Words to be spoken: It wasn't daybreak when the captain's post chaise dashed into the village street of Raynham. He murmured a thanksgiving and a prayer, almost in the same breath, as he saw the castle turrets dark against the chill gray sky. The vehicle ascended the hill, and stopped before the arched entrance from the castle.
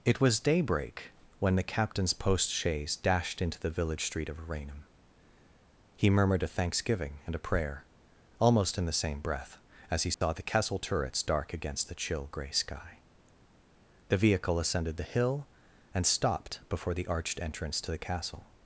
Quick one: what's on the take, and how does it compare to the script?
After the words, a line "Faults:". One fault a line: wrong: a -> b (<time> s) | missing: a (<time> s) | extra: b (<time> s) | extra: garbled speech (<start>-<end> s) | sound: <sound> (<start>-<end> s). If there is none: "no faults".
It was daybreak when the captain's post chaise dashed into the village street of Raynham. He murmured a thanksgiving and a prayer, almost in the same breath, as he saw the castle turrets dark against the chill gray sky. The vehicle ascended the hill, and stopped before the arched entrance to the castle.
Faults:
wrong: wasn't -> was (0.2 s)
sound: dropout (10.1-10.2 s)
wrong: from -> to (17.8 s)